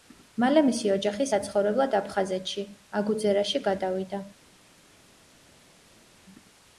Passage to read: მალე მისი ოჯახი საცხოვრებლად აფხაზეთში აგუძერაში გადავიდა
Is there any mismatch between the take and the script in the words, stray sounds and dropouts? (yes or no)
no